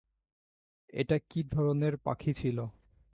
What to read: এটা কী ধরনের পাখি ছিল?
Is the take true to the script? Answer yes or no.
yes